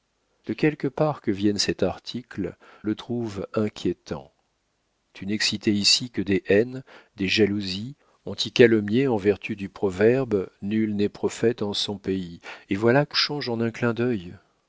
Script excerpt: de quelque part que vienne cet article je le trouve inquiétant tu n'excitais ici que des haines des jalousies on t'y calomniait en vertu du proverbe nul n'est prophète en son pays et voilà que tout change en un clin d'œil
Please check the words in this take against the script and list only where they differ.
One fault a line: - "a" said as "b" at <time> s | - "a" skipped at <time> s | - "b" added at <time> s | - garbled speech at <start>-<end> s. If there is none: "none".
- "je" skipped at 2.5 s
- "tout" skipped at 13.2 s